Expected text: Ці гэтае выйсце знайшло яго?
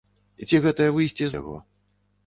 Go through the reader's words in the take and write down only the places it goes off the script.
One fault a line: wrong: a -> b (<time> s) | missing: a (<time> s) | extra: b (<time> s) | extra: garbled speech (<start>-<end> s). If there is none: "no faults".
missing: знайшло (1.3 s)